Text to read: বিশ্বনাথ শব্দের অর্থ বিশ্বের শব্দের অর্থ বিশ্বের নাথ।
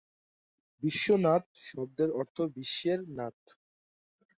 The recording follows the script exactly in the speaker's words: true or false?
false